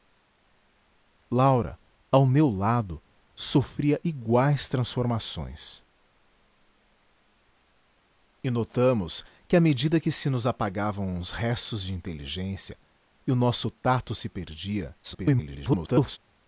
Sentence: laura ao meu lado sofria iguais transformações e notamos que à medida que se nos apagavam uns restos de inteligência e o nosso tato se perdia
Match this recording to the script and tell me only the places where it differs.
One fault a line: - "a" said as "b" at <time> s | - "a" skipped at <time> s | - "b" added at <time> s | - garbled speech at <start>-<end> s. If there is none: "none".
- garbled speech at 15.0-16.2 s